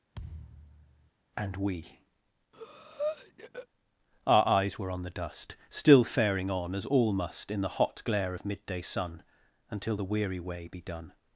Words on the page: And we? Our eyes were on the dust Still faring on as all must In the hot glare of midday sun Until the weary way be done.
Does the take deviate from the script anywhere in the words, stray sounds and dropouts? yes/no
yes